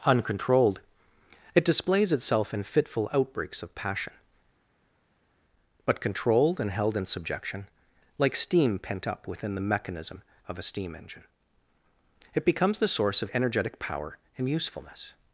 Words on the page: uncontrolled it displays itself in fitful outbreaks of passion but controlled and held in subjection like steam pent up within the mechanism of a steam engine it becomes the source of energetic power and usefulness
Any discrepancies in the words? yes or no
no